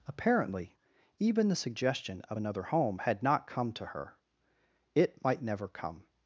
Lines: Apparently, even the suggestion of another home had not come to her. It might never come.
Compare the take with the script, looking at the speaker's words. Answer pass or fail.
pass